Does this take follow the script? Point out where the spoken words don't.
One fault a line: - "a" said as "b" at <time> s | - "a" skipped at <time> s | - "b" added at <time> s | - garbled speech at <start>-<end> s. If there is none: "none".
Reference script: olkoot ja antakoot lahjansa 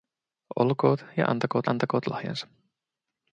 - "antakoot" added at 1.7 s